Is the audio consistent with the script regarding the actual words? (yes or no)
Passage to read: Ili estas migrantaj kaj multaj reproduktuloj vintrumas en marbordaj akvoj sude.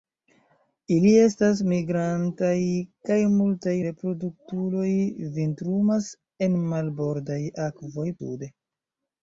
yes